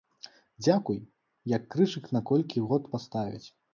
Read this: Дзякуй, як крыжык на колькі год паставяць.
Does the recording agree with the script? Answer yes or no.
yes